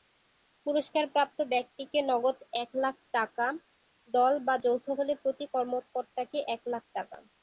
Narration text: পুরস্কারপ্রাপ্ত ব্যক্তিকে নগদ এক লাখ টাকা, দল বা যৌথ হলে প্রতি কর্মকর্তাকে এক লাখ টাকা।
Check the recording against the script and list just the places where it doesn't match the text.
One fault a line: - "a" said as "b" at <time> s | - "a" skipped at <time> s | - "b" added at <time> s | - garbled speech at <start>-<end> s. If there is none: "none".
none